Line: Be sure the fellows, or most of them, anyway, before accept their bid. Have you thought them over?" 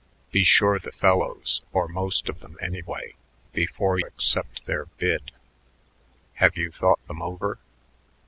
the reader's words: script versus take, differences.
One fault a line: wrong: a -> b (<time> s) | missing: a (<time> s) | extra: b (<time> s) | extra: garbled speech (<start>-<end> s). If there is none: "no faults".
no faults